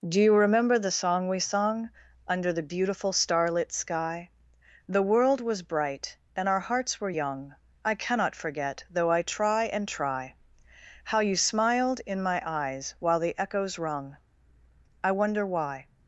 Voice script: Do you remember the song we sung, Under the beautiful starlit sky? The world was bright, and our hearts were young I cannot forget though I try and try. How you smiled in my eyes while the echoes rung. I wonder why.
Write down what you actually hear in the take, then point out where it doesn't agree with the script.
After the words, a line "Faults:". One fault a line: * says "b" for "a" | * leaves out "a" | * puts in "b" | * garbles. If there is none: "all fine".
Do you remember the song we sung, Under the beautiful starlit sky? The world was bright, and our hearts were young I cannot forget though I try and try. How you smiled in my eyes while the echoes rung. I wonder why.
Faults:
all fine